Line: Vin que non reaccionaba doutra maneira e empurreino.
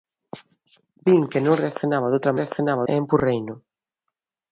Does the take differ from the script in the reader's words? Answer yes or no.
yes